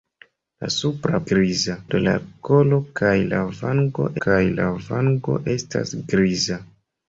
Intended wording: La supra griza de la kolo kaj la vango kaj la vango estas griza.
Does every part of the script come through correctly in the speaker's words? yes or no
yes